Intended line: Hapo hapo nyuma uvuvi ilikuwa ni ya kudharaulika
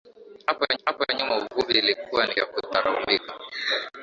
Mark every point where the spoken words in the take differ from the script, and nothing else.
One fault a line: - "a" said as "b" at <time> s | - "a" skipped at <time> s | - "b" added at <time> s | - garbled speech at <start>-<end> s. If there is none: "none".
none